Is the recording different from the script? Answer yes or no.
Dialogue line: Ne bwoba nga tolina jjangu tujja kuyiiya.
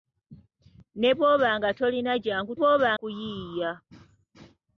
yes